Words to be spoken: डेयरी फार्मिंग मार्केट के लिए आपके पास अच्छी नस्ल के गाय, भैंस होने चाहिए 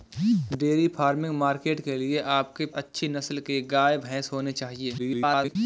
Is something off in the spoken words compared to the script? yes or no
yes